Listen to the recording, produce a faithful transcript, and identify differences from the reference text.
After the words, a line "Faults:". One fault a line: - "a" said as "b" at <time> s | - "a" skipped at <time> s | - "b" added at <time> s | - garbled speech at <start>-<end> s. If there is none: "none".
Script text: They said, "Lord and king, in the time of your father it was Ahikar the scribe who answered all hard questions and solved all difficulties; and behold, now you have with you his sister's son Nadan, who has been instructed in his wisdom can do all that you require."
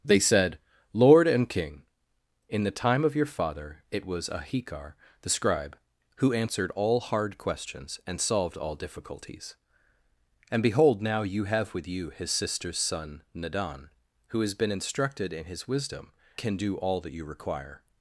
They said, "Lord and king, in the time of your father it was Ahikar the scribe who answered all hard questions and solved all difficulties; and behold, now you have with you his sister's son Nadan, who has been instructed in his wisdom can do all that you require."
Faults:
none